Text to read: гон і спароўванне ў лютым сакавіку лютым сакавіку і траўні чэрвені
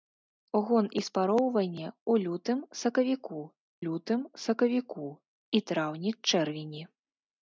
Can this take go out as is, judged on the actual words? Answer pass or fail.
pass